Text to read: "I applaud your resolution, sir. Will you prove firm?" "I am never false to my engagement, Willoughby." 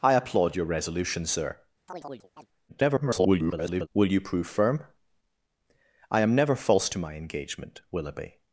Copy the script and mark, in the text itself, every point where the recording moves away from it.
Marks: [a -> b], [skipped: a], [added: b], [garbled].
"I applaud your resolution, sir. [garbled] Will you prove firm?" "I am never false to my engagement, Willoughby."